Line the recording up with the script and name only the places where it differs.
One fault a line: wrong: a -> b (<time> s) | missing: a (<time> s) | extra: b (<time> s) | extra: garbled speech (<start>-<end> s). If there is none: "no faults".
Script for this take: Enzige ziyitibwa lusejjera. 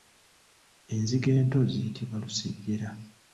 extra: ento (1.4 s)